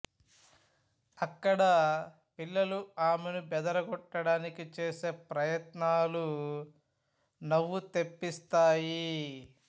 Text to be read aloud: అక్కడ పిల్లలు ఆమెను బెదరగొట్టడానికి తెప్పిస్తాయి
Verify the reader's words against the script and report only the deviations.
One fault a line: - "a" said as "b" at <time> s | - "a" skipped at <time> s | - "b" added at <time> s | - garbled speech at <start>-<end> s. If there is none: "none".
- "చేసే ప్రయత్నాలు నవ్వు" added at 4.8 s